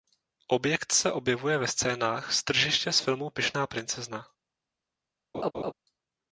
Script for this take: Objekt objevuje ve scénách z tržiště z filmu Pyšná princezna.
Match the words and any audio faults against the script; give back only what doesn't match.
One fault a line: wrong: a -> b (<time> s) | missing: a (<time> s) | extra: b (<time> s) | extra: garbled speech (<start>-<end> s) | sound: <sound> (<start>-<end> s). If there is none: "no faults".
extra: se (0.9 s)
sound: laugh (5.3-5.7 s)